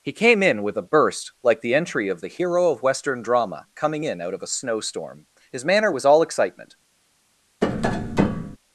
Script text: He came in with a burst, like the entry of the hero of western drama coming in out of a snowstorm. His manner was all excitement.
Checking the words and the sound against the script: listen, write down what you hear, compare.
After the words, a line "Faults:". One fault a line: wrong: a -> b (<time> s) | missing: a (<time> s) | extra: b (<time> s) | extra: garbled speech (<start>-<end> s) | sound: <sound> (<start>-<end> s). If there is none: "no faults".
He came in with a burst, like the entry of the hero of western drama coming in out of a snowstorm. His manner was all excitement.
Faults:
sound: tap (7.6-8.6 s)